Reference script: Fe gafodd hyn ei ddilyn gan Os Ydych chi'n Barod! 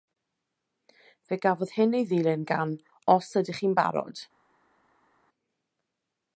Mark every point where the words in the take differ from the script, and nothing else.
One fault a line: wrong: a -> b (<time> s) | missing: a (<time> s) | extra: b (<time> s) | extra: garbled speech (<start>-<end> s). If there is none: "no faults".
no faults